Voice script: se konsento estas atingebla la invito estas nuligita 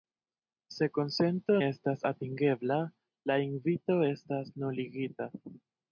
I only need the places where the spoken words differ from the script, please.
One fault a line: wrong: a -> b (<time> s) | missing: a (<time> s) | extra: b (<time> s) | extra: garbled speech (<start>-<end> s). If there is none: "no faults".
no faults